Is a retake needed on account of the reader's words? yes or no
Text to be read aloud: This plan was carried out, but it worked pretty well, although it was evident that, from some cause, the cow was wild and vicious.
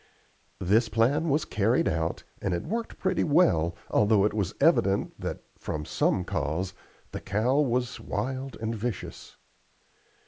yes